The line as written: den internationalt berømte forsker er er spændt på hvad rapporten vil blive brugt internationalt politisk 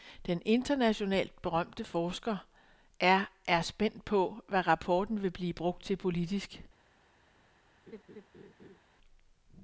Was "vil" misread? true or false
false